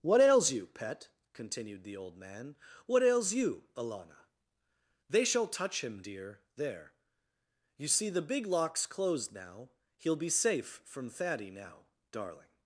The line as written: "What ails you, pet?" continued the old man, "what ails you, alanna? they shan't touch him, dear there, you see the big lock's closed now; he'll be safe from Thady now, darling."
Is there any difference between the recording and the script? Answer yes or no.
yes